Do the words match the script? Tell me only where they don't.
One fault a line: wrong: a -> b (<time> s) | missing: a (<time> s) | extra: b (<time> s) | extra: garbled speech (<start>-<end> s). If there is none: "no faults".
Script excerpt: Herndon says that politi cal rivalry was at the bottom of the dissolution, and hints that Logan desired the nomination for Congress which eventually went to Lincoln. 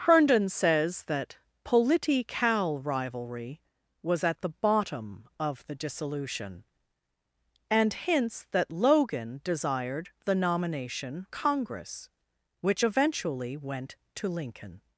missing: for (11.3 s)